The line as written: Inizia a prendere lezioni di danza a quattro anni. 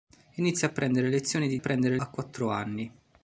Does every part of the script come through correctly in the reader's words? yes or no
no